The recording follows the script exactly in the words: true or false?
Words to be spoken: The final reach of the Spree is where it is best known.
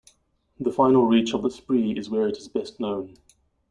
true